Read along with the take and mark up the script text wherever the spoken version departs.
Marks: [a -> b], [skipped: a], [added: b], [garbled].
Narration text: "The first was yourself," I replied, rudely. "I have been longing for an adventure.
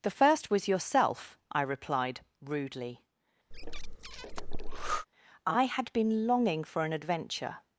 "The first was yourself," I replied, rudely. "I [have -> had] been longing for an adventure.